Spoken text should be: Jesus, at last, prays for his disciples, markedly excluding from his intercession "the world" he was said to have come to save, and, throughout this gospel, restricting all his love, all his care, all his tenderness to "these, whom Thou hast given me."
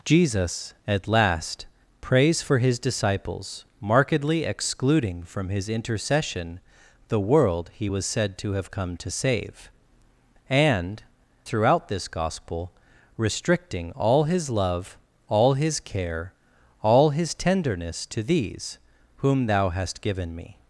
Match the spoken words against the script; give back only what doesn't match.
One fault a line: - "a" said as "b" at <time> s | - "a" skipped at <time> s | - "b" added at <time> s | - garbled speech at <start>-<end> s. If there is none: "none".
none